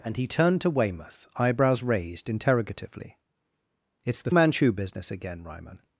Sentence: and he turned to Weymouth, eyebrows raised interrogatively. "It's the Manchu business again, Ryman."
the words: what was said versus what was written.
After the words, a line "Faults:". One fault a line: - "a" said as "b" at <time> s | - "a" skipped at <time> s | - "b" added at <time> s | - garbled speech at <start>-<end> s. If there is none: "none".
and he turned to Weymouth, eyebrows raised interrogatively. "It's the Manchu business again, Ryman."
Faults:
none